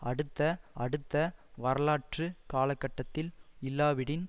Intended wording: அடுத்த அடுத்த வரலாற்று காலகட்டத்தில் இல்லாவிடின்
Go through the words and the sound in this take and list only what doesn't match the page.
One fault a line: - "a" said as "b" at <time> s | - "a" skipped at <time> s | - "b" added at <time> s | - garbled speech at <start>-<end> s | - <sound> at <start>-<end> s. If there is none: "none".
none